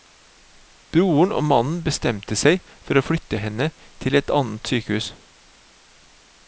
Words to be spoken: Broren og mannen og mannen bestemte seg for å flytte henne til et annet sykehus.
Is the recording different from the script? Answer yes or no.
yes